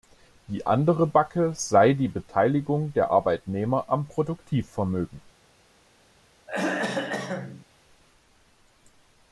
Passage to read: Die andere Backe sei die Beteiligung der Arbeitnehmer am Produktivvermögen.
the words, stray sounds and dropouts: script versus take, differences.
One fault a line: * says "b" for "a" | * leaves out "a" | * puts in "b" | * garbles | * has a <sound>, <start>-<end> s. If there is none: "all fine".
* has a throat clearing, 6.5-7.7 s